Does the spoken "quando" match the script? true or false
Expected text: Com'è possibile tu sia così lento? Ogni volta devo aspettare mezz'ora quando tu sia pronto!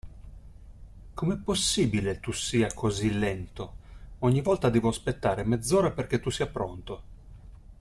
false